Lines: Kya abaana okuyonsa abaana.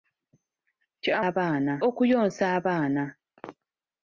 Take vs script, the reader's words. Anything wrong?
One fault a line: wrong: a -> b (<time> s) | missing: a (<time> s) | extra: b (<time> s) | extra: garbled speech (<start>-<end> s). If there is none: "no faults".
no faults